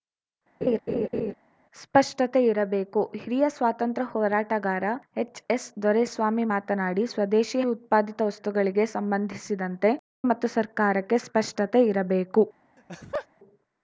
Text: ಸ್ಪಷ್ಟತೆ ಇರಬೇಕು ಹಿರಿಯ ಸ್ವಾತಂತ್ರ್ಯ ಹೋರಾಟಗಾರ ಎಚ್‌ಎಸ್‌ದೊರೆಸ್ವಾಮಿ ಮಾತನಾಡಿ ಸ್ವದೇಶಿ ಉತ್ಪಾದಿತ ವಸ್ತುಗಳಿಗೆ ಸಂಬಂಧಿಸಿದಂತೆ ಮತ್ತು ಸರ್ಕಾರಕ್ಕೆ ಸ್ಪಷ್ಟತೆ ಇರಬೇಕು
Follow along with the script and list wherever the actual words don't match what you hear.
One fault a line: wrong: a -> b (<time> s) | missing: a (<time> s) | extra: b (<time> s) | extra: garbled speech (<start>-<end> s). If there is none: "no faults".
no faults